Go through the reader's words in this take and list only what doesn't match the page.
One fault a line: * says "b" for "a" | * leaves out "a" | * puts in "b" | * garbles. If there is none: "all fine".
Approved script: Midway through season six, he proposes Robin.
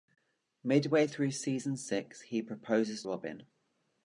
all fine